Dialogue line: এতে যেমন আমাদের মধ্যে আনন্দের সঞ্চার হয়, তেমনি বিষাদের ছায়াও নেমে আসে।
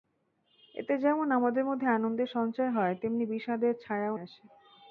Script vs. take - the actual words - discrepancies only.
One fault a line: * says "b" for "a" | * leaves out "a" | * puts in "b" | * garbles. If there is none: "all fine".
* leaves out "নেমে"